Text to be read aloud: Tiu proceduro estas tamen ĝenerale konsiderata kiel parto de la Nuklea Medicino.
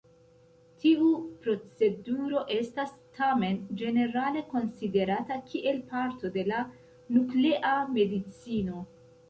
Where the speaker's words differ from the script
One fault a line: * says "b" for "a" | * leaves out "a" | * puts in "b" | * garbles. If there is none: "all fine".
all fine